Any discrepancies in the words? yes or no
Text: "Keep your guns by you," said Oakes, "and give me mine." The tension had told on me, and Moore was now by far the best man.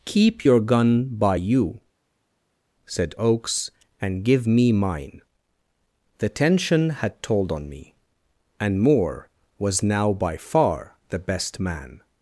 yes